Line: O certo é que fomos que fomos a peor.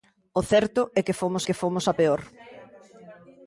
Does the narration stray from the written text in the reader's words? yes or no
no